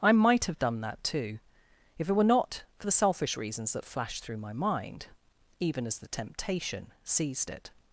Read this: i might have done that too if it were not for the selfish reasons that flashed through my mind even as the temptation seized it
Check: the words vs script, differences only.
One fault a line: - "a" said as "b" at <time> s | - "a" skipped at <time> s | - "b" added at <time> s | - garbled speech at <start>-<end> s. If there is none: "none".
none